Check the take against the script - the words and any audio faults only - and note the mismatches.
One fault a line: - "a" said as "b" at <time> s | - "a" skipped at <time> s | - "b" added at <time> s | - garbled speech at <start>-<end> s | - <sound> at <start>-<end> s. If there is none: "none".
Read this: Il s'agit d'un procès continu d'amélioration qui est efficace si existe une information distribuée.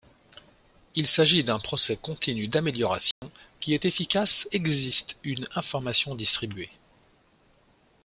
- dropout at 3.1-3.2 s
- "si" skipped at 4.5 s